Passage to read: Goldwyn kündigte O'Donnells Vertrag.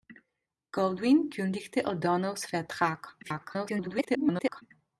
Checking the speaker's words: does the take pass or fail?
fail